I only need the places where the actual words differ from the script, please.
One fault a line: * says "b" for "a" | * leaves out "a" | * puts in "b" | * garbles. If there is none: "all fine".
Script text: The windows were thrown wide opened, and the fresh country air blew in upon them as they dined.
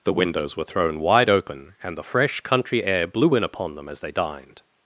* says "open" for "opened"